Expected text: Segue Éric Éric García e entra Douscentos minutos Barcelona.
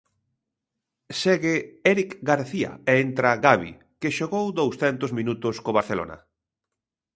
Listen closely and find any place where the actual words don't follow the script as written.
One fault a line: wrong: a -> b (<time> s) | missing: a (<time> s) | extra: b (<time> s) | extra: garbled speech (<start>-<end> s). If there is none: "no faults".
missing: Éric (2.1 s)
extra: Gavi que xogou (3.4 s)
extra: co (5.6 s)